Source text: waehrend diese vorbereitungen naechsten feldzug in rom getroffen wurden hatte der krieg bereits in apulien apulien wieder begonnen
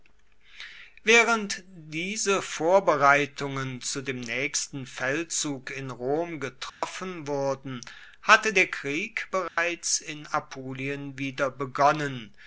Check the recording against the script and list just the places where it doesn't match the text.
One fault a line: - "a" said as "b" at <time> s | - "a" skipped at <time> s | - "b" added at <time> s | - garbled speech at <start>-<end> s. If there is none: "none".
- "zu dem" added at 3.8 s
- "apulien" skipped at 11.2 s